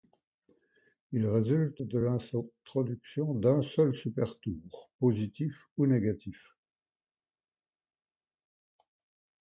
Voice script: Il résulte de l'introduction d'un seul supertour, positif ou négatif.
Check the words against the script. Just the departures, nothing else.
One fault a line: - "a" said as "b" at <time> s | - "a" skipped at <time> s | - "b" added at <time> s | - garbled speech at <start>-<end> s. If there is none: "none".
none